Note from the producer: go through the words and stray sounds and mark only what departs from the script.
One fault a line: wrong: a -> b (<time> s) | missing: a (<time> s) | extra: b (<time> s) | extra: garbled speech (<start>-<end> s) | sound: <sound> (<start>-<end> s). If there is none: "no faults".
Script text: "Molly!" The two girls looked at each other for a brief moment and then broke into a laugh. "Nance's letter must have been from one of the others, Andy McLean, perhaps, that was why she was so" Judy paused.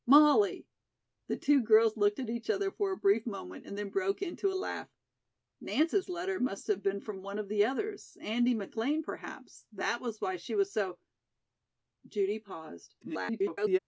extra: garbled speech (13.0-13.8 s)